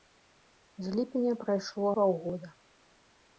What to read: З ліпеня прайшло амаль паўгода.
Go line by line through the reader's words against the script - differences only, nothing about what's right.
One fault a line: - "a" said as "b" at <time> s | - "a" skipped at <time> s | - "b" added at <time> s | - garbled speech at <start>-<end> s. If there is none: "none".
- "амаль" skipped at 1.9 s